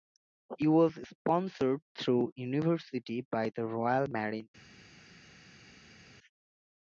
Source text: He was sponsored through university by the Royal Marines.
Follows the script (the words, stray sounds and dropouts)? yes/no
yes